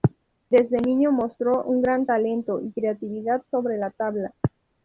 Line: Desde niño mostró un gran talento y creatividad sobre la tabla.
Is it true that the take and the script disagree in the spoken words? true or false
false